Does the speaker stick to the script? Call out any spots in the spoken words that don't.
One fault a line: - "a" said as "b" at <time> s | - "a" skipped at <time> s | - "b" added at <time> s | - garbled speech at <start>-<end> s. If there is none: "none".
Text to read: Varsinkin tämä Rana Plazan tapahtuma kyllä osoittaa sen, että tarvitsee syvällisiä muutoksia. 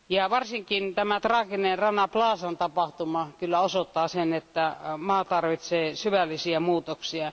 - "traaginen" added at 1.2 s
- "maa" added at 5.0 s